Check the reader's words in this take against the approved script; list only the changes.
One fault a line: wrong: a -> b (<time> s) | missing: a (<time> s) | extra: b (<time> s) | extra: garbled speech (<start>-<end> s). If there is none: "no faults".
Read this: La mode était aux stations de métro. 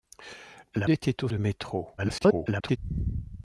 missing: mode (0.9 s)
missing: stations (1.3 s)
extra: garbled speech (2.0-2.8 s)